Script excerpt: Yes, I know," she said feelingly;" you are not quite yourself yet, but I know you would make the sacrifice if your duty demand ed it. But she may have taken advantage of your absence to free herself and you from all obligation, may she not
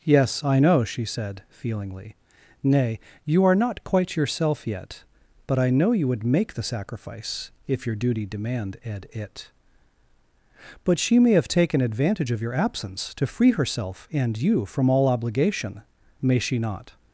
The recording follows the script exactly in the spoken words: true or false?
false